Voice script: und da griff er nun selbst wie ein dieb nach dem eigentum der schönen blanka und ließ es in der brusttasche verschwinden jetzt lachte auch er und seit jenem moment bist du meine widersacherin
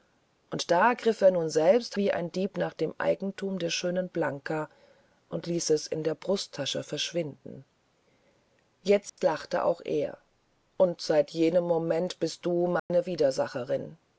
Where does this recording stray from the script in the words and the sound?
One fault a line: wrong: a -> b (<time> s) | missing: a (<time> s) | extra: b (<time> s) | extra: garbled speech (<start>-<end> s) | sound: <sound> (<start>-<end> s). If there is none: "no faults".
sound: dropout (9.1-9.2 s)
sound: dropout (12.8-12.9 s)